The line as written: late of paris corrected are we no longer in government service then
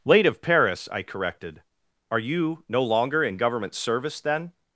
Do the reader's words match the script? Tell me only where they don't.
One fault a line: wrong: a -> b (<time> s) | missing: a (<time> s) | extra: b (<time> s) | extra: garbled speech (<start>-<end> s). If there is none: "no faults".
extra: i (0.9 s)
wrong: we -> you (2.2 s)